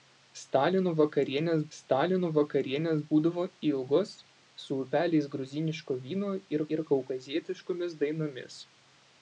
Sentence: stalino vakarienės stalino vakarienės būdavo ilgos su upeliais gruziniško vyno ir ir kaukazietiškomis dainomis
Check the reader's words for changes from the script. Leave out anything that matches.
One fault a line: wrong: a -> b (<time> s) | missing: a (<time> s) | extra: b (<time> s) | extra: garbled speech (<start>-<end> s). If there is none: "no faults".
no faults